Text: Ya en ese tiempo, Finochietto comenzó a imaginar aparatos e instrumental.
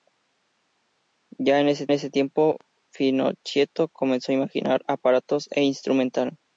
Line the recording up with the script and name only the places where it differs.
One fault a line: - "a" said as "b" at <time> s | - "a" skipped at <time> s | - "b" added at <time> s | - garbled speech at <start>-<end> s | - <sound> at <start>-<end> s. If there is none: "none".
- "ese" added at 1.9 s